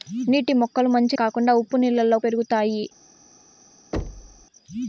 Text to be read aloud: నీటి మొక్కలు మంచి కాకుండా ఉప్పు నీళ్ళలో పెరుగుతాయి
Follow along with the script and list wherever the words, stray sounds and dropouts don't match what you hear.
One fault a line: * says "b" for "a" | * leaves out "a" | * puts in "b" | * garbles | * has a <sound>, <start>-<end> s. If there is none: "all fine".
* has a thud, 3.9-4.5 s